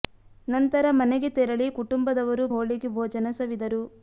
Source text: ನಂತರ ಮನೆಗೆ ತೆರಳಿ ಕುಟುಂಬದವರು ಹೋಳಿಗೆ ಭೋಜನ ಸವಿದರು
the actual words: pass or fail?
pass